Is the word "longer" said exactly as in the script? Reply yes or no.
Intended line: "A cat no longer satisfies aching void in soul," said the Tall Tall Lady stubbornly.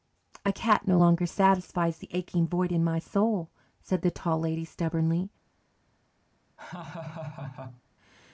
yes